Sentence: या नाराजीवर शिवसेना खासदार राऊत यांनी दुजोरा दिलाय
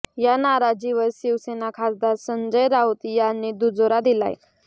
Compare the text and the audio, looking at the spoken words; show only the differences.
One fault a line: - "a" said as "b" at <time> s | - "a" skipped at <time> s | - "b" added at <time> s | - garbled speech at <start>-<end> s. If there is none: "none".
- "संजय" added at 2.2 s